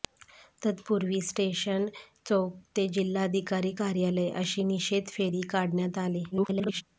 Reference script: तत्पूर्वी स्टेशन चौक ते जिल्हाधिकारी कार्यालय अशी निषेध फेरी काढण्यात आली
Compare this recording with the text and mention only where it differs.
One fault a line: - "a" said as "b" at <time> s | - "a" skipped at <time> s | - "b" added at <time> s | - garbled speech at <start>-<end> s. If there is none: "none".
- garbled speech at 6.3-6.8 s